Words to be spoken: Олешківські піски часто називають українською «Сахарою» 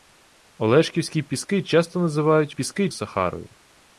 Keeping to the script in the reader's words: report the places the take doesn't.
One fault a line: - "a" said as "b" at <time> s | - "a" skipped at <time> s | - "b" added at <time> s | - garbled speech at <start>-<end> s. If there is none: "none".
- "українською" said as "піски" at 2.5 s